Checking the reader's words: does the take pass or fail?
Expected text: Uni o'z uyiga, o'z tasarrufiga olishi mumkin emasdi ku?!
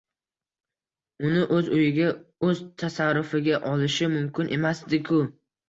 pass